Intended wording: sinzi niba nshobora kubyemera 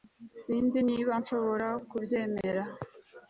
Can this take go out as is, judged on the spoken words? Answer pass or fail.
pass